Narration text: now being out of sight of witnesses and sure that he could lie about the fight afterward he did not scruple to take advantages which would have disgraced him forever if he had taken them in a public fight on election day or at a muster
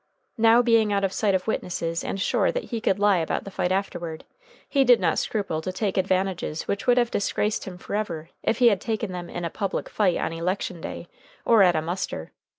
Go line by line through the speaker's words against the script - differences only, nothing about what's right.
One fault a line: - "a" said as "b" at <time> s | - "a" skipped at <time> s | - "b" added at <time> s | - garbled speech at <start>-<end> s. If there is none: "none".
none